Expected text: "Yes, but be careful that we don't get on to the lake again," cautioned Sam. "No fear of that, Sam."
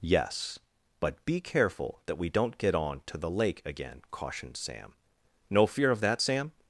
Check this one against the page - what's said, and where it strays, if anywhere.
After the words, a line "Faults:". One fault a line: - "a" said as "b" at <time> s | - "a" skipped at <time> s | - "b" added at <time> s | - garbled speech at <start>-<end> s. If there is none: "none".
"Yes, but be careful that we don't get on to the lake again," cautioned Sam. "No fear of that, Sam."
Faults:
none